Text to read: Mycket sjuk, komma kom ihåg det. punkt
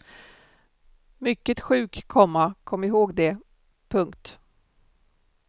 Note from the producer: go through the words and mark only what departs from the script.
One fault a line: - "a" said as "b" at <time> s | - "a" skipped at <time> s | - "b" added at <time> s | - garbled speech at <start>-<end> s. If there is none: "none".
none